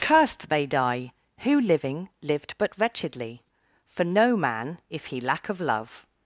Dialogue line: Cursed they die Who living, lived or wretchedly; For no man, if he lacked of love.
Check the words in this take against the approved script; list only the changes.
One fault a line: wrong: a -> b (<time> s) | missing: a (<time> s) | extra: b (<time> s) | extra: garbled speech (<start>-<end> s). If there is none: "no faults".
wrong: or -> but (2.6 s)
wrong: lacked -> lack (5.2 s)